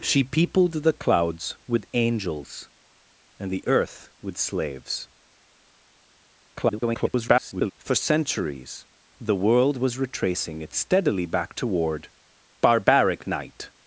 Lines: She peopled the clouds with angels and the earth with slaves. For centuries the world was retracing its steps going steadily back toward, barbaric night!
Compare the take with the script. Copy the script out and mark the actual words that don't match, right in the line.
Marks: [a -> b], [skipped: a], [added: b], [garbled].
She peopled the clouds with angels and the earth with slaves. [garbled] For centuries the world was retracing its [skipped: steps going] steadily back toward, barbaric night!